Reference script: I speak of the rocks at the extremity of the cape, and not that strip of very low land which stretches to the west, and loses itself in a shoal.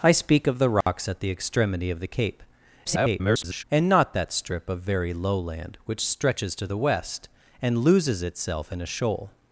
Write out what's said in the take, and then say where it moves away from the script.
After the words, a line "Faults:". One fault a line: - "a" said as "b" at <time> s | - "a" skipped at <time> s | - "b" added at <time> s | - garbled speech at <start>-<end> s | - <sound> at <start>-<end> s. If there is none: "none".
I speak of the rocks at the extremity of the cape, [garbled] and not that strip of very low land which stretches to the west, and loses itself in a shoal.
Faults:
- dropout at 0.8-0.9 s
- garbled speech at 2.8-3.6 s